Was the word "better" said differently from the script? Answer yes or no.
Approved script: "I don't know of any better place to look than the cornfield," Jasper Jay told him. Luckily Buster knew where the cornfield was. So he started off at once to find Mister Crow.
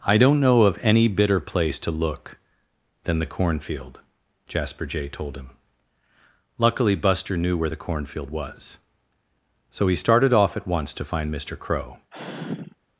yes